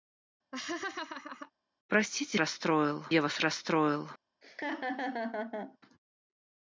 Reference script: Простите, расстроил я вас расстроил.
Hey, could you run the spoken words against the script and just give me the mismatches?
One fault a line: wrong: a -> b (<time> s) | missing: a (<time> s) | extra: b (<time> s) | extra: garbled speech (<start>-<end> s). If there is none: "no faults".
no faults